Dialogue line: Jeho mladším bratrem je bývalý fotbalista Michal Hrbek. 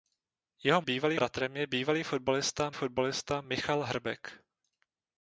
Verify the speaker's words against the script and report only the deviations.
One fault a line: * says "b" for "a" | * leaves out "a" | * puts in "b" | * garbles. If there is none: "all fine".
* says "bývalý" for "mladším"
* puts in "fotbalista"